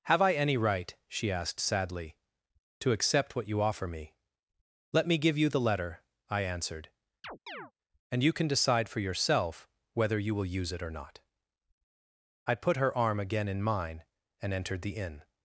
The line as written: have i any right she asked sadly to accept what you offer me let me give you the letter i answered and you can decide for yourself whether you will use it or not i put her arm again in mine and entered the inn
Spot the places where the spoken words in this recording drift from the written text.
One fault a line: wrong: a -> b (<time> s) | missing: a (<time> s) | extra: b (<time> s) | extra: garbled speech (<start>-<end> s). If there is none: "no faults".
no faults